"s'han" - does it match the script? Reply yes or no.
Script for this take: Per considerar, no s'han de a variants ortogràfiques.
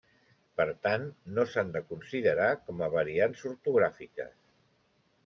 yes